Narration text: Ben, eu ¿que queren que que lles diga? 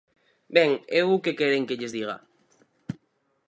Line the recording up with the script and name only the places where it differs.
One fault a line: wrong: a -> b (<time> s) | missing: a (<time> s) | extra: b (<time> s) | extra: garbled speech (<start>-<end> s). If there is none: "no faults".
missing: que (1.8 s)